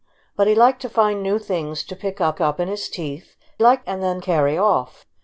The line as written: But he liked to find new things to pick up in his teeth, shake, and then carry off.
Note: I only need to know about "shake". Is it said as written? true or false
false